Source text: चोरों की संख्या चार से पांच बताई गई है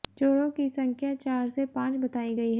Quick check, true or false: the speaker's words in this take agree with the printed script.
true